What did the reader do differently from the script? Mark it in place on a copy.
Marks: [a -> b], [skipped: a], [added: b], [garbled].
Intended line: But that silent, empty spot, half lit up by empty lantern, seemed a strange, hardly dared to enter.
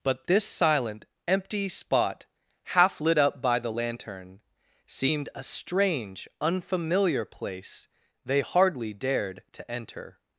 But [that -> this] silent, empty spot, half lit up by [empty -> the] lantern, seemed a strange, [added: unfamiliar place they] hardly dared to enter.